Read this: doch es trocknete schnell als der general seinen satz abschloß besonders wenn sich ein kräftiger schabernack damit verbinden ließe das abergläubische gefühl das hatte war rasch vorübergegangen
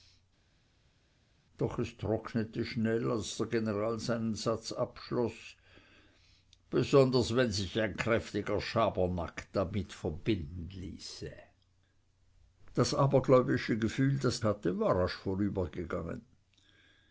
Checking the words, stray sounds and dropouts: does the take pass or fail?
pass